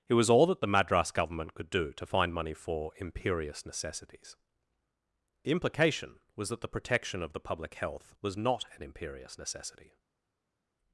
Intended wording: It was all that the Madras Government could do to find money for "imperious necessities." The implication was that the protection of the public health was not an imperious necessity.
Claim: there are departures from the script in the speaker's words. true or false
false